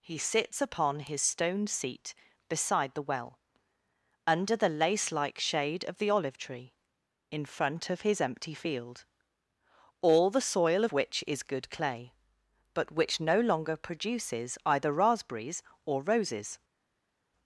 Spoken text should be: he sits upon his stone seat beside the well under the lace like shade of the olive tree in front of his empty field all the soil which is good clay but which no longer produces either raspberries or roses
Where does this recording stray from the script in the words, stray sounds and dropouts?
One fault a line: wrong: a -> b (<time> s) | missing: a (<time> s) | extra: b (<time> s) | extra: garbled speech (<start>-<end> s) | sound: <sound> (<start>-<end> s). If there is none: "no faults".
no faults